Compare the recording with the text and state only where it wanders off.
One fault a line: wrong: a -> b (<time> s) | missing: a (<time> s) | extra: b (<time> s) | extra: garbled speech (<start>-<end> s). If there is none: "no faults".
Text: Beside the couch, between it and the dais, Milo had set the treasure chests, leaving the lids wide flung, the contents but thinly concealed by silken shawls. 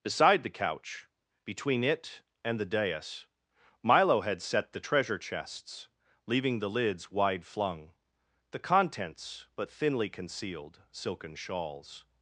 missing: by (10.8 s)